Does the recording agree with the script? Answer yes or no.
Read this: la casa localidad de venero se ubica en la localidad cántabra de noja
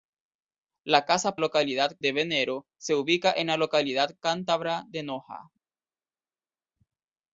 yes